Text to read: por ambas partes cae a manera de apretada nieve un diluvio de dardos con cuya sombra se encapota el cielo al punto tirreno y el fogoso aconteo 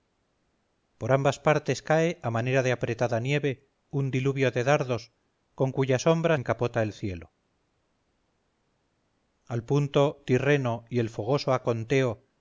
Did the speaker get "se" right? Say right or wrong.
wrong